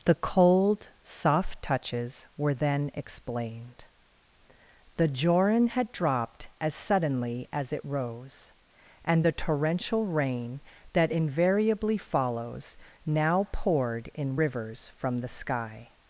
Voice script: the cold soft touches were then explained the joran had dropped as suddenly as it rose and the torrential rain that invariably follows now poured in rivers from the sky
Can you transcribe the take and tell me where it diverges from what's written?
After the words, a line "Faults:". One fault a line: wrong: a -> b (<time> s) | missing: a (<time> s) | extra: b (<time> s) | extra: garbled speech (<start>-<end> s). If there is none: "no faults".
the cold soft touches were then explained the joran had dropped as suddenly as it rose and the torrential rain that invariably follows now poured in rivers from the sky
Faults:
no faults